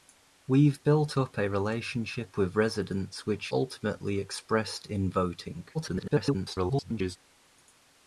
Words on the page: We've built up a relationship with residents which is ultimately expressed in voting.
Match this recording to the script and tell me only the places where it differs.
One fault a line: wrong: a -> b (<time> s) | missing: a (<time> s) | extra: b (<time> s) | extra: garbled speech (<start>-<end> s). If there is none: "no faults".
missing: is (3.5 s)
extra: garbled speech (5.7-7.2 s)